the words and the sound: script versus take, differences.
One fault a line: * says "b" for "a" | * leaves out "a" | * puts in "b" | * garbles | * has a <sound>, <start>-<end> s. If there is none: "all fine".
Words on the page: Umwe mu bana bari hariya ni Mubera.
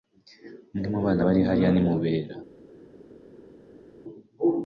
all fine